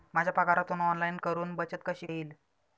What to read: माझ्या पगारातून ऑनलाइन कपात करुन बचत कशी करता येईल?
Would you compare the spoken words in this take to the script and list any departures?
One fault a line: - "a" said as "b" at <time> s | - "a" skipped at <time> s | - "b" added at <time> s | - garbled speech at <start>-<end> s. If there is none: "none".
- "कपात" skipped at 1.2 s
- "करता" skipped at 2.1 s